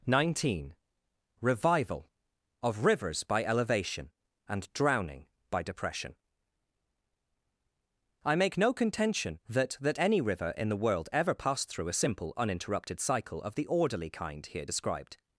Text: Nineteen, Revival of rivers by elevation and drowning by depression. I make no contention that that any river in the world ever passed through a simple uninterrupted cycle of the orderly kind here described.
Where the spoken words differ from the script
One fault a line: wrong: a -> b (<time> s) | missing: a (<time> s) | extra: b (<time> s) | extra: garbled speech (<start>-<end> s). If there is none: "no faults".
no faults